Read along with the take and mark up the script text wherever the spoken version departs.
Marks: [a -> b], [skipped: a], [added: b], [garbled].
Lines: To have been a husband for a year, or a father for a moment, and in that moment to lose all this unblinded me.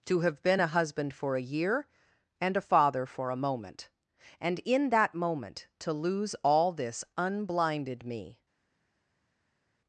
To have been a husband for a year, [or -> and] a father for a moment, and in that moment to lose all this unblinded me.